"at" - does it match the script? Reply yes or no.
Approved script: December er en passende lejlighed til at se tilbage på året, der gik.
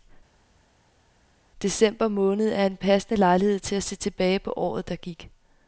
yes